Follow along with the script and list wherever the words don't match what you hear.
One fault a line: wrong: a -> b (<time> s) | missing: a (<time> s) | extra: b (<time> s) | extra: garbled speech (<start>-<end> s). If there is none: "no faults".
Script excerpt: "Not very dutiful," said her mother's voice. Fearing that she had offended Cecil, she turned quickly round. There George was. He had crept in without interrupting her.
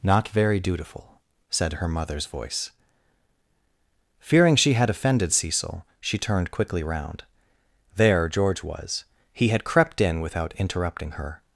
missing: that (4.5 s)